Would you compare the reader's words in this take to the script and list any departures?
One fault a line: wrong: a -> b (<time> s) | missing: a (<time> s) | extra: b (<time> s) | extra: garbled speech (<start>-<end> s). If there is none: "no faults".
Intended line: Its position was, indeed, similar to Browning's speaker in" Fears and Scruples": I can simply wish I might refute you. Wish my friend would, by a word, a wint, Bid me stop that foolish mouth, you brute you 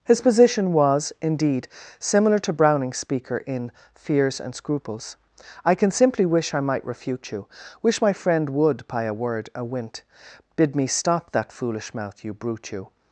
wrong: Its -> His (0.0 s)